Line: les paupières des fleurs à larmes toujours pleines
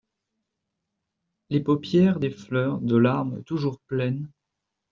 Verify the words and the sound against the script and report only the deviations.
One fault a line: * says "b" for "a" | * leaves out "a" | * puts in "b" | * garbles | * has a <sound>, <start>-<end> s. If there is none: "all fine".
* says "de" for "à"